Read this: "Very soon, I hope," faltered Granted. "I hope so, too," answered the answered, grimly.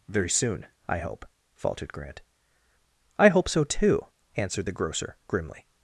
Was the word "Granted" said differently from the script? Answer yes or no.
yes